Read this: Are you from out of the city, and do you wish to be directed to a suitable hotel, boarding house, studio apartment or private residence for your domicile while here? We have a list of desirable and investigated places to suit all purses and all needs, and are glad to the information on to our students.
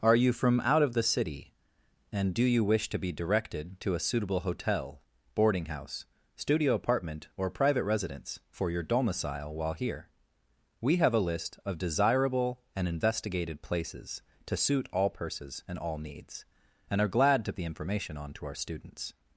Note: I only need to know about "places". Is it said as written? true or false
true